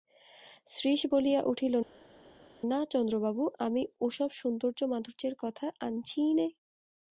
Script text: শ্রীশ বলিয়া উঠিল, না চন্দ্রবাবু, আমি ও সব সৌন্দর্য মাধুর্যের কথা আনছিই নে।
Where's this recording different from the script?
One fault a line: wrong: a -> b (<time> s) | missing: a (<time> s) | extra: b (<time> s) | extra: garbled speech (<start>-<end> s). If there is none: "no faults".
no faults